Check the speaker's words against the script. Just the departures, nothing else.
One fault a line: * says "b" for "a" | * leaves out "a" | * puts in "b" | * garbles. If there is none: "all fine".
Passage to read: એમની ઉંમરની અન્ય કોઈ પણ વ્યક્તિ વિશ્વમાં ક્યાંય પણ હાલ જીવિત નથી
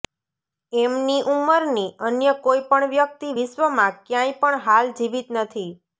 all fine